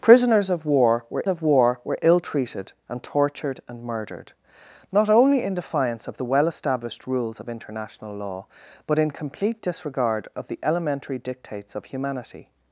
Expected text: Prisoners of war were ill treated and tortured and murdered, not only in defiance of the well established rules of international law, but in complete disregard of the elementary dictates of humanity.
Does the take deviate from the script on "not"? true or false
false